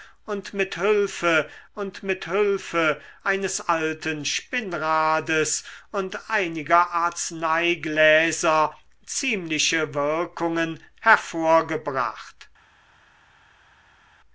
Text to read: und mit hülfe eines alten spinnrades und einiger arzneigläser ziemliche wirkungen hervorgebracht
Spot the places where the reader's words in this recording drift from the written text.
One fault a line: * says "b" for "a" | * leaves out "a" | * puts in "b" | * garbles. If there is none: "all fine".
* puts in "und mit hülfe"